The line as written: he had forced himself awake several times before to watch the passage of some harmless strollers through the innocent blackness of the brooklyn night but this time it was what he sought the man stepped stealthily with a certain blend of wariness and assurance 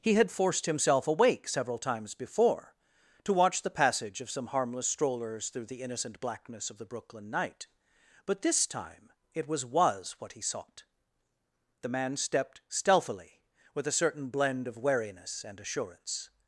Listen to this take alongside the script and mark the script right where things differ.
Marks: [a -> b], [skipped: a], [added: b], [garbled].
he had forced himself awake several times before to watch the passage of some harmless strollers through the innocent blackness of the brooklyn night but this time it was [added: was] what he sought the man stepped stealthily with a certain blend of wariness and assurance